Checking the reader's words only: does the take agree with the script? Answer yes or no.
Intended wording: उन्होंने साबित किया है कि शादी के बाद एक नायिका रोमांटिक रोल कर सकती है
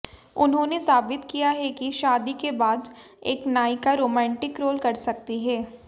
yes